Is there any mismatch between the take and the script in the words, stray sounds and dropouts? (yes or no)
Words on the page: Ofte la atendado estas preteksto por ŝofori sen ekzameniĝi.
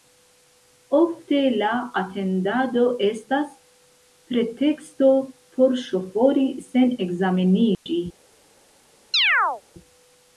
yes